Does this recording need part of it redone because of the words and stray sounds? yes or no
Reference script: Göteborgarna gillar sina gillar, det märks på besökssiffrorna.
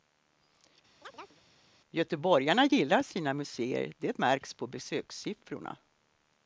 yes